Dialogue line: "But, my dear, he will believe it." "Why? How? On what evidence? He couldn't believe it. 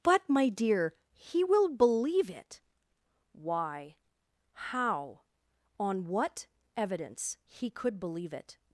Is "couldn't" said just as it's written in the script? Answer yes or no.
no